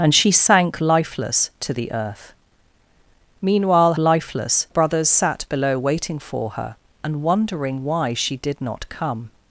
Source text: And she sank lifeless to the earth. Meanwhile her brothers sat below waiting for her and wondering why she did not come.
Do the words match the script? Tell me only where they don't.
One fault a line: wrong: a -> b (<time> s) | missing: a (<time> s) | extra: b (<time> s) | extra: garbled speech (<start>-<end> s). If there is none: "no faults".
wrong: her -> lifeless (4.0 s)